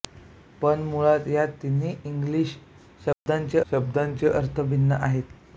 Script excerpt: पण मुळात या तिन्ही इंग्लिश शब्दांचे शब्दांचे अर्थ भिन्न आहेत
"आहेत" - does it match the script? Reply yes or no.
yes